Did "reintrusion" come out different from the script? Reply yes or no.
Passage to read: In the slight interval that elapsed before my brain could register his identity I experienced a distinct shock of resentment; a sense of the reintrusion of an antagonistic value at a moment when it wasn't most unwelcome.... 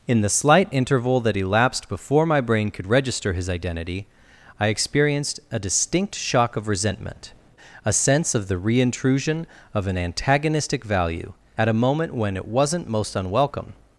no